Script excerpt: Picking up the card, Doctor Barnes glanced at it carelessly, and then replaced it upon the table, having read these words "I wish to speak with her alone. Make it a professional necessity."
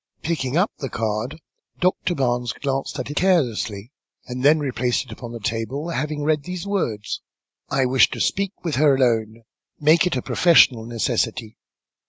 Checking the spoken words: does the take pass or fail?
fail